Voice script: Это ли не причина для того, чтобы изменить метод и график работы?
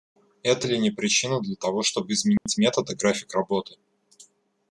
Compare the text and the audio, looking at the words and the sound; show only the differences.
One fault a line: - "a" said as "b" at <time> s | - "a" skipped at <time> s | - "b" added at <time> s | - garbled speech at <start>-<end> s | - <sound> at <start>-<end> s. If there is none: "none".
- dropout at 2.4-2.5 s